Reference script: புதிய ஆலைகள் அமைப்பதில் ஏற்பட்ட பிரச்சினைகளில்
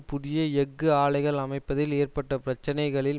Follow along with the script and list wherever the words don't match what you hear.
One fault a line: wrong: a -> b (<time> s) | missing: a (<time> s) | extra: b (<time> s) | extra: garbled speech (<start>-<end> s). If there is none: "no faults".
extra: எஃகு (0.6 s)